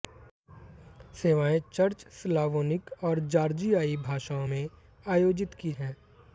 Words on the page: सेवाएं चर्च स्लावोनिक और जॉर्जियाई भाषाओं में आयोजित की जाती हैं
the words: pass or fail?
fail